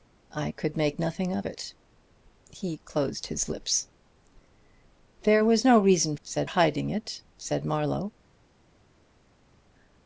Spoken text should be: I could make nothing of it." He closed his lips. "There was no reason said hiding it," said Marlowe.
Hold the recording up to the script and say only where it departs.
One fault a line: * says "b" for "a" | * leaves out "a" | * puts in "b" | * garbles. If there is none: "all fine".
all fine